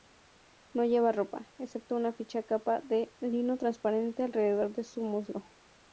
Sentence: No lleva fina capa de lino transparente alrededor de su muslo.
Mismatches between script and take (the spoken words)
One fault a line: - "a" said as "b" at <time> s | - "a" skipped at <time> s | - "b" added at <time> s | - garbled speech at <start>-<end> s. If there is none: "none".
- "ropa excepto una" added at 1.1 s